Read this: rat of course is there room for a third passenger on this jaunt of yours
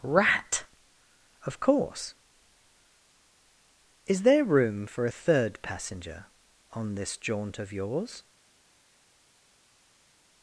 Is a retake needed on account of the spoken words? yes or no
no